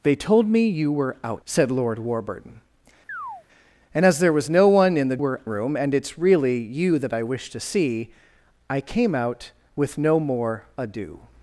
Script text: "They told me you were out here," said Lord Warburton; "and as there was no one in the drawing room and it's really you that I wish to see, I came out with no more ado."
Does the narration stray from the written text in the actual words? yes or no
yes